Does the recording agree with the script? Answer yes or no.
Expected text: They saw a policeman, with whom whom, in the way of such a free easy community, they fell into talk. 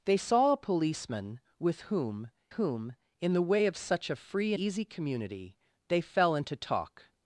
yes